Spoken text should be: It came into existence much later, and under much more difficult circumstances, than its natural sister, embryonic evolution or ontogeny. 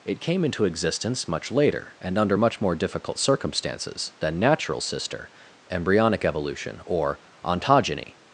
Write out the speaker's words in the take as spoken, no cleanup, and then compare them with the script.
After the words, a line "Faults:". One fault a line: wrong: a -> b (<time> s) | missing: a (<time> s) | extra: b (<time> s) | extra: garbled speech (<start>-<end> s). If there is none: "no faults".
It came into existence much later, and under much more difficult circumstances, than natural sister, embryonic evolution or ontogeny.
Faults:
missing: its (4.4 s)